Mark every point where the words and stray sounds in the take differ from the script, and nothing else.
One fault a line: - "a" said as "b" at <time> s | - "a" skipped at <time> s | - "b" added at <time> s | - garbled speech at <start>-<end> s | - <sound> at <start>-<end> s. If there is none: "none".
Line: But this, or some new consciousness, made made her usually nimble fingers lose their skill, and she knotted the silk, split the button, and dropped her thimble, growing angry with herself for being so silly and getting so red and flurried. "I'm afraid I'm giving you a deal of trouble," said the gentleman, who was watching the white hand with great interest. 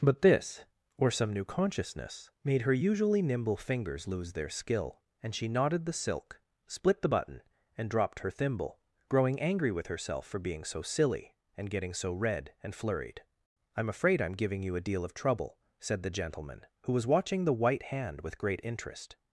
- "made" skipped at 2.6 s